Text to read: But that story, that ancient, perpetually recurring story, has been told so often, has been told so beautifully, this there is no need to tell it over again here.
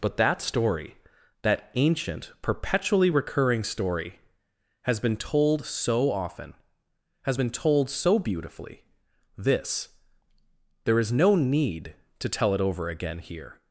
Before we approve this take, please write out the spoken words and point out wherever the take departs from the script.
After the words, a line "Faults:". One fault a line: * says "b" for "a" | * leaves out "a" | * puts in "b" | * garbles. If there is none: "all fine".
But that story, that ancient, perpetually recurring story, has been told so often, has been told so beautifully, this there is no need to tell it over again here.
Faults:
all fine